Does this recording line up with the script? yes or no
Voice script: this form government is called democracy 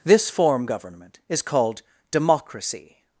yes